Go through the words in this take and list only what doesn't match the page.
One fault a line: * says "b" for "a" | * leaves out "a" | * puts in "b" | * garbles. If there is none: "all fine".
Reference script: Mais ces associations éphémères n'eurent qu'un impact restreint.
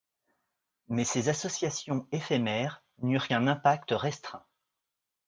all fine